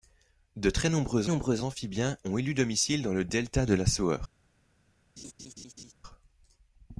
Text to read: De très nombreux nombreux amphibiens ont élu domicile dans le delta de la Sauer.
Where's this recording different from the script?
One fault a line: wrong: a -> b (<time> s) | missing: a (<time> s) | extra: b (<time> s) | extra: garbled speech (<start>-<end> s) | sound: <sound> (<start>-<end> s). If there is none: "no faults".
sound: laugh (5.2-5.9 s)